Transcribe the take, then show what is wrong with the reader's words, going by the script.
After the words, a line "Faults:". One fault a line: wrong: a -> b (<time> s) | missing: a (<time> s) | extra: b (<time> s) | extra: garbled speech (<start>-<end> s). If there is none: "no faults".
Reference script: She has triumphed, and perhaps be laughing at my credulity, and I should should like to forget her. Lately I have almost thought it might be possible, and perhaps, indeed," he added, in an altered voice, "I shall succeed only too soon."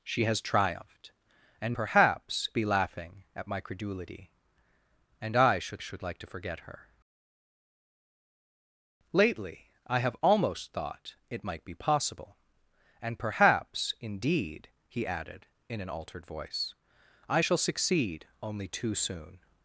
She has triumphed, and perhaps be laughing at my credulity, and I should should like to forget her. Lately I have almost thought it might be possible, and perhaps, indeed," he added, in an altered voice, "I shall succeed only too soon."
Faults:
no faults